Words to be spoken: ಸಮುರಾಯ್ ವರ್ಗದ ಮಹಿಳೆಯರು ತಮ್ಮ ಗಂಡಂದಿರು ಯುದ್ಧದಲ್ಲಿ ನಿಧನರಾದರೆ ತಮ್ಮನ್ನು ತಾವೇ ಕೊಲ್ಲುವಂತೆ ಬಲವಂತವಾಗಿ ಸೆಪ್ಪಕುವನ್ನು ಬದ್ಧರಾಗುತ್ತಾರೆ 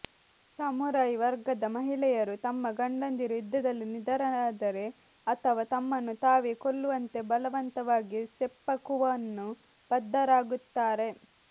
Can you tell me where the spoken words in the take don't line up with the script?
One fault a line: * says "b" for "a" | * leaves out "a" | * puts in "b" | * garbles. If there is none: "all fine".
* puts in "ಅಥವಾ"